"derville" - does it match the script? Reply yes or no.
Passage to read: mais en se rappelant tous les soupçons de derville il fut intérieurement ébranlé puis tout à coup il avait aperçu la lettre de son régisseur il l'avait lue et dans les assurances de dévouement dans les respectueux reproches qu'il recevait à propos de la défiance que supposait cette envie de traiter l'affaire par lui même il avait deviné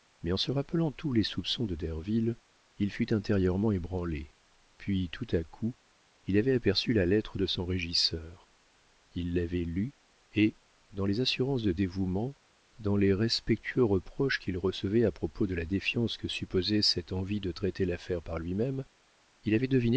yes